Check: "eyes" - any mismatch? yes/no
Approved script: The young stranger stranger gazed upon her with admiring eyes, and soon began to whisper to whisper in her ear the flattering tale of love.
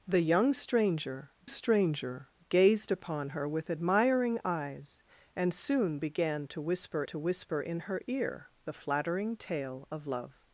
no